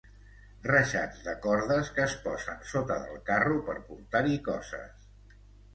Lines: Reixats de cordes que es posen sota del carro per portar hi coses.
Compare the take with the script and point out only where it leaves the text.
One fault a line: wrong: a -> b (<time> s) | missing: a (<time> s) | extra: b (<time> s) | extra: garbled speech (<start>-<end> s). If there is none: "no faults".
no faults